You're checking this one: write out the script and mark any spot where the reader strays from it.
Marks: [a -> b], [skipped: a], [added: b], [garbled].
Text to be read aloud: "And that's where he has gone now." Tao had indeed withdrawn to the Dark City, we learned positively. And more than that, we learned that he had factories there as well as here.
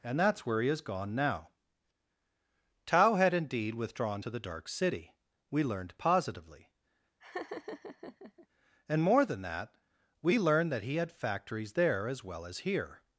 "And that's where he has gone now." Tao had indeed withdrawn to the Dark City, we learned positively. And more than that, we learned that he had factories there as well as here.